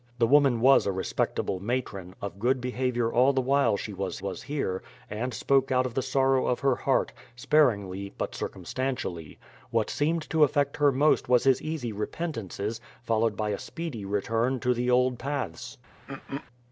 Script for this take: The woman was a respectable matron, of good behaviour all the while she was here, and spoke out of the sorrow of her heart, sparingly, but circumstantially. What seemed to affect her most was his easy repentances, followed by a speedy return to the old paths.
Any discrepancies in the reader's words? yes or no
yes